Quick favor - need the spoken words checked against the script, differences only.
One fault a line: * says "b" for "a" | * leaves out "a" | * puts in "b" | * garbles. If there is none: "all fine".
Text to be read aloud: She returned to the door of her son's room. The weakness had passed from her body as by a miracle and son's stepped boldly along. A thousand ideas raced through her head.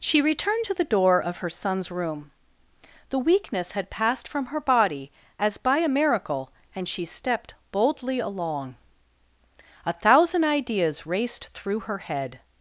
* says "she" for "son's"